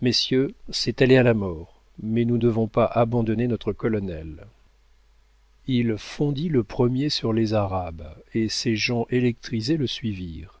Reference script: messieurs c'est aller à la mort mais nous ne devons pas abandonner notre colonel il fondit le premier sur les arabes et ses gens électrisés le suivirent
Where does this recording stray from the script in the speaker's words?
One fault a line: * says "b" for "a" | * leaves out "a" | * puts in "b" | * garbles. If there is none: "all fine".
* leaves out "ne"